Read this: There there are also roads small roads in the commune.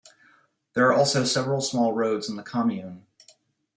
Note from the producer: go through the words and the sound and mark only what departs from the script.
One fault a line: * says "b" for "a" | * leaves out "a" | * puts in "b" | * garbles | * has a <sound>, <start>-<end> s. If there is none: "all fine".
* leaves out "there"
* says "several" for "roads"